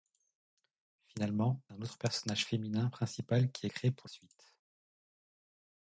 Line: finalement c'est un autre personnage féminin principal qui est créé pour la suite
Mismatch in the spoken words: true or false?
true